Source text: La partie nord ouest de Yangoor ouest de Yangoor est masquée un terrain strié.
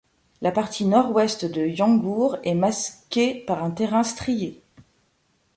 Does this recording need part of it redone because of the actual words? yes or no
yes